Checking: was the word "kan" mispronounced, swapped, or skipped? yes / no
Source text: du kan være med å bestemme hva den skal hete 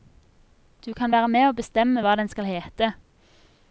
no